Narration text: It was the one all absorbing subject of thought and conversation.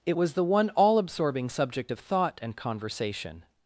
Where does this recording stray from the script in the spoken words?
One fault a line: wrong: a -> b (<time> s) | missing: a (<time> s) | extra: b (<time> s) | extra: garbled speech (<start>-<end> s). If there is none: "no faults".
no faults